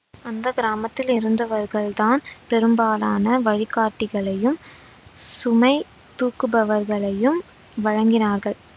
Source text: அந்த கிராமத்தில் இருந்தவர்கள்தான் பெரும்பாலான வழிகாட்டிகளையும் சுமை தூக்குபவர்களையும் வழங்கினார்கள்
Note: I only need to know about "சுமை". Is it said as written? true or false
true